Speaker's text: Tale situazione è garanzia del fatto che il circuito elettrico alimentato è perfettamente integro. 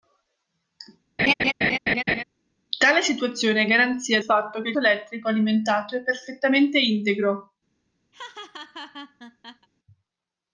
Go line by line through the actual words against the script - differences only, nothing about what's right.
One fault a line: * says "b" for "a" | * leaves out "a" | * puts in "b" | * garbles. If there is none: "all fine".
* leaves out "del"
* leaves out "circuito"